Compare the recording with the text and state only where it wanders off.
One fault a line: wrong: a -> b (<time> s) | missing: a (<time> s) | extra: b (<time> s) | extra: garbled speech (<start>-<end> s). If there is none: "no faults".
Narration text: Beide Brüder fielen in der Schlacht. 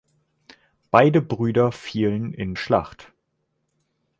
missing: der (2.5 s)